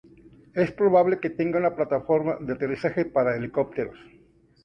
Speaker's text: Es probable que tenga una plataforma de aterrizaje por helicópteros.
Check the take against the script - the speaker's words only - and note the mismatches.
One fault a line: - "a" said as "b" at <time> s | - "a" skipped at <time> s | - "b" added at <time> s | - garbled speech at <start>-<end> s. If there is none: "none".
- "por" said as "para" at 3.0 s